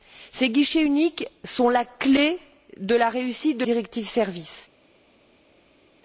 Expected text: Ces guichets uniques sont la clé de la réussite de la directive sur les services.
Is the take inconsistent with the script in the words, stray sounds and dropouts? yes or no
yes